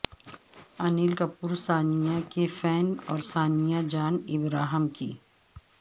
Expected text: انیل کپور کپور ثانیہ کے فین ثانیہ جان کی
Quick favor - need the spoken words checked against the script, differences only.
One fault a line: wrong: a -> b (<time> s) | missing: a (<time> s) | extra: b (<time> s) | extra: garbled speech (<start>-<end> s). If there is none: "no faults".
missing: کپور (1.5 s)
extra: اور (3.1 s)
extra: ابراہم (4.3 s)